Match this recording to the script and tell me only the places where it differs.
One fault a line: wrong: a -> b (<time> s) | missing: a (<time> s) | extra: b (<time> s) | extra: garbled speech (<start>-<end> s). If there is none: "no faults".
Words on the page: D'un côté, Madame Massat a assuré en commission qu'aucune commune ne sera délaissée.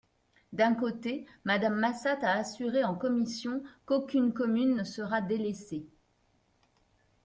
no faults